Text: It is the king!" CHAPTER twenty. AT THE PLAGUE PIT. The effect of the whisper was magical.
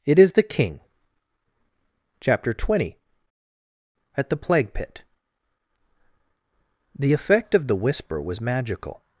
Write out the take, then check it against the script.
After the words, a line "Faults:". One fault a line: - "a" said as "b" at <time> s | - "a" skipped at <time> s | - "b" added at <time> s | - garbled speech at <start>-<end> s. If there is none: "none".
It is the king!" CHAPTER twenty. AT THE PLAGUE PIT. The effect of the whisper was magical.
Faults:
none